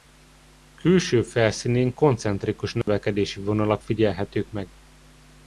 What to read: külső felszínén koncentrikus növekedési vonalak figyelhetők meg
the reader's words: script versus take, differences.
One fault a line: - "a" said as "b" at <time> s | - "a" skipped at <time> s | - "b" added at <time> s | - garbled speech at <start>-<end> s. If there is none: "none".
none